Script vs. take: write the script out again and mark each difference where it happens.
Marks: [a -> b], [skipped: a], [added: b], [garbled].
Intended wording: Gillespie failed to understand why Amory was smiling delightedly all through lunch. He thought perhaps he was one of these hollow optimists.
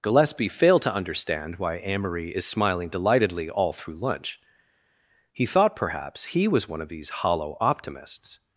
Gillespie failed to understand why Amory [was -> is] smiling delightedly all through lunch. He thought perhaps he was one of these hollow optimists.